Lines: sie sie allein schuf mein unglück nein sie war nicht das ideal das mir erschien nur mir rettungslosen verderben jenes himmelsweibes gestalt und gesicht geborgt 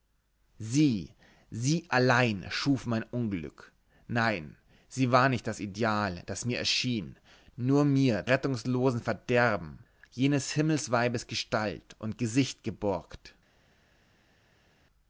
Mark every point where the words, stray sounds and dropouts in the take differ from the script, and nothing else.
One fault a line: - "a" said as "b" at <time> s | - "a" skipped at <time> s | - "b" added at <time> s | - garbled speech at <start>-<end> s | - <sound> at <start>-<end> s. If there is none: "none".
none